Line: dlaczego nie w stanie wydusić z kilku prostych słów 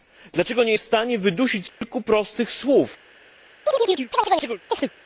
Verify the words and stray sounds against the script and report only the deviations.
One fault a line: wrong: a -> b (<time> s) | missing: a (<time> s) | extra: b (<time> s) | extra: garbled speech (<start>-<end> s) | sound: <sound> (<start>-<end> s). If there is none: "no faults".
sound: dropout (1.7-1.8 s)
sound: chirp (3.7-4.9 s)